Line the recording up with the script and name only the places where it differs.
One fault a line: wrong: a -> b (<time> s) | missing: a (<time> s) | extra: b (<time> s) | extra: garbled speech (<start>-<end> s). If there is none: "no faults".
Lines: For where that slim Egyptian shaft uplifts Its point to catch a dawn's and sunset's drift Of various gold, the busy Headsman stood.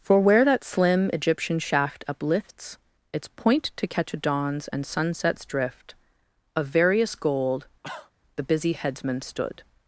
no faults